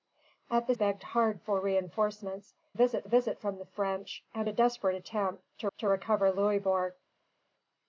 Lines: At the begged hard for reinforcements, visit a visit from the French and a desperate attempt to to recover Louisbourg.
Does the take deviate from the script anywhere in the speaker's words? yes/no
no